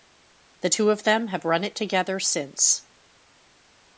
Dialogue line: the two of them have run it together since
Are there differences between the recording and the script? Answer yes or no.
no